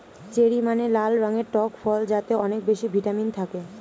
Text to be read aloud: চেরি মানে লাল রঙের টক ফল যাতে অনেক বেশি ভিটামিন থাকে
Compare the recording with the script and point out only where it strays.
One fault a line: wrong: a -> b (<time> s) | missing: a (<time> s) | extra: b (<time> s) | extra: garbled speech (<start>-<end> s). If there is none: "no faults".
no faults